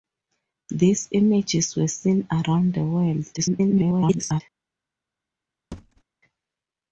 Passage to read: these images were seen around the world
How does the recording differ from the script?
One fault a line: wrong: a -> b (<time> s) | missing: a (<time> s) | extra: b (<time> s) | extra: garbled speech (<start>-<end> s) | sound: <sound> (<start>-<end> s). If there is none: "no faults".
extra: garbled speech (3.4-4.4 s)
sound: thud (5.7-6.0 s)